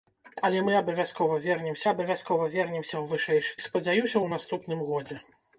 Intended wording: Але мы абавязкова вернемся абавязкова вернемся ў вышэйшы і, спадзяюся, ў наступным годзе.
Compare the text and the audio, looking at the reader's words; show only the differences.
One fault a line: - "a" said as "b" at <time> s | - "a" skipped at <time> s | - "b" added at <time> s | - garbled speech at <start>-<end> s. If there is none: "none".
none